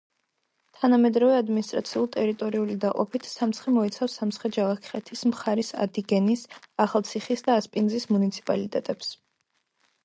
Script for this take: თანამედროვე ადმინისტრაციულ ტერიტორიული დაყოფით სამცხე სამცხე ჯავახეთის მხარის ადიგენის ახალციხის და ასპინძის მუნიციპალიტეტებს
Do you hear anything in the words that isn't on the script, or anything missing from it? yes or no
yes